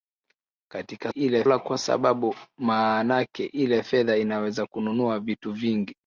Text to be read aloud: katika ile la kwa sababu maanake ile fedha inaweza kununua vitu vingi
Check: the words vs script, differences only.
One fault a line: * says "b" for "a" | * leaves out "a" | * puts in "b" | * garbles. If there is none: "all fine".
all fine